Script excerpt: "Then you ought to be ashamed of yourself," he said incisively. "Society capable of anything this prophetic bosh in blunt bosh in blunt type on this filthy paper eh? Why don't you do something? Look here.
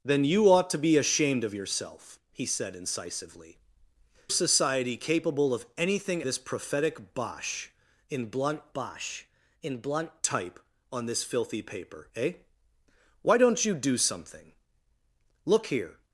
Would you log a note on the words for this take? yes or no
no